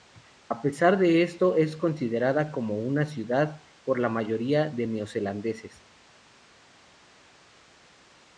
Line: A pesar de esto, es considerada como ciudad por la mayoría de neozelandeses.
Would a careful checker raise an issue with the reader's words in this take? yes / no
yes